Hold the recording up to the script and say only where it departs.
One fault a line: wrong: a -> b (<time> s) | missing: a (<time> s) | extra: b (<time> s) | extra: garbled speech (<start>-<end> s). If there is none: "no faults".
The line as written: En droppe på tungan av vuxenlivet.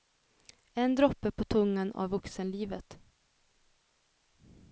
no faults